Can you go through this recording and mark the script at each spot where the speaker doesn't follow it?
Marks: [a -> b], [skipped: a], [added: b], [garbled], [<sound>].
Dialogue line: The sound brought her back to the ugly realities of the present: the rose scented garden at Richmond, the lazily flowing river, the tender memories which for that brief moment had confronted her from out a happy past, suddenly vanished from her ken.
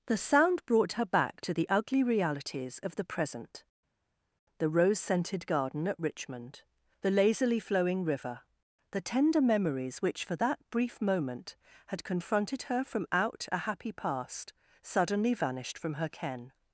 The sound brought her back to the ugly realities of the present: the rose scented garden at Richmond, the lazily flowing river, the tender memories which for that brief moment had confronted her from out a happy past, suddenly vanished from her ken.